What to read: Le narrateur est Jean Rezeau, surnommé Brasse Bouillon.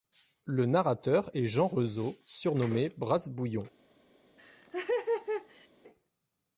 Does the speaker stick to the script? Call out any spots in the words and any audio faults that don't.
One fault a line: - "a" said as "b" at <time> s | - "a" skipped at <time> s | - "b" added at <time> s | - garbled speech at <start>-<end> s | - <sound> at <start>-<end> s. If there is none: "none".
- laugh at 4.4-5.7 s